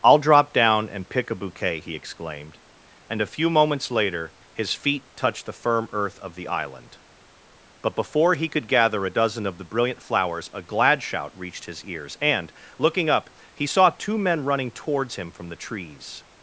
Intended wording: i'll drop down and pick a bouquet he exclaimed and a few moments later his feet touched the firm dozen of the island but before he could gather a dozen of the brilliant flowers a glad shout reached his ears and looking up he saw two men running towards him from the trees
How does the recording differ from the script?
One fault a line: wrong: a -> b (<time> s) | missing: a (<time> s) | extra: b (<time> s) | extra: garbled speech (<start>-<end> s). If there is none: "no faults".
wrong: dozen -> earth (5.9 s)